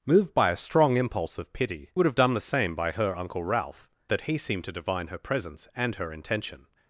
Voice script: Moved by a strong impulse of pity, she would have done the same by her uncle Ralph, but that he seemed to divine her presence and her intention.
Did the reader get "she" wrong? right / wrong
wrong